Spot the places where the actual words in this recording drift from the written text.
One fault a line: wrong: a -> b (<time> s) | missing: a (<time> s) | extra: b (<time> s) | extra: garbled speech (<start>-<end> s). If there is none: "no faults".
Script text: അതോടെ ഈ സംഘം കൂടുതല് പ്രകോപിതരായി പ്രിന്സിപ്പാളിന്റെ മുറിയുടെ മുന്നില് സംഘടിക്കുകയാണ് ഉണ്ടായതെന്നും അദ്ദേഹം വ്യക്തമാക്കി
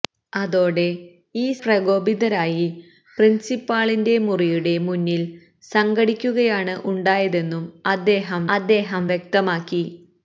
missing: സംഘം കൂടുതല് (1.5 s)
extra: അദ്ദേഹം (8.5 s)